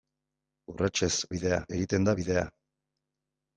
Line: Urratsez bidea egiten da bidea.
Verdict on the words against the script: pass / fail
pass